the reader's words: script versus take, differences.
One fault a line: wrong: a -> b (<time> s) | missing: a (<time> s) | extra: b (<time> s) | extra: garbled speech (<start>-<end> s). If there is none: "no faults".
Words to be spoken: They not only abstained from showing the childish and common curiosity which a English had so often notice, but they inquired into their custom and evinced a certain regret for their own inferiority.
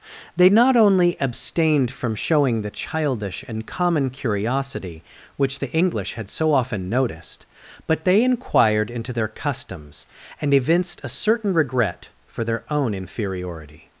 wrong: a -> the (5.6 s)
wrong: notice -> noticed (6.9 s)
wrong: custom -> customs (9.3 s)